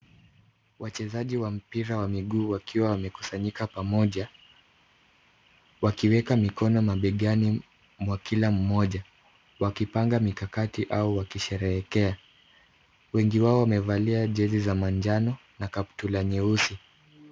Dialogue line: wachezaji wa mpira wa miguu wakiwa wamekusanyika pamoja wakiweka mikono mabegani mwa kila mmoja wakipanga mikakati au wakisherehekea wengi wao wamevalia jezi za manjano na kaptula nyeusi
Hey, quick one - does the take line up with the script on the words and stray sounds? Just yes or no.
yes